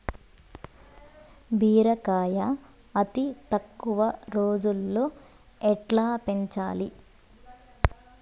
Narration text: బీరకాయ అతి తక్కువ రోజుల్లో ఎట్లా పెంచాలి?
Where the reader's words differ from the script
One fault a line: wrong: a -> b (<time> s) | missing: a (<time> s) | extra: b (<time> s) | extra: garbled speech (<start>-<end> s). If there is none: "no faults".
no faults